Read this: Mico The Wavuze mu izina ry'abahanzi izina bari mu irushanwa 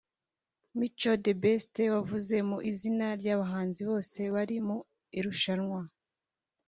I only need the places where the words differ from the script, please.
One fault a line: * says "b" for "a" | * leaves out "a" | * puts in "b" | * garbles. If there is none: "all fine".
* puts in "Best"
* says "bose" for "izina"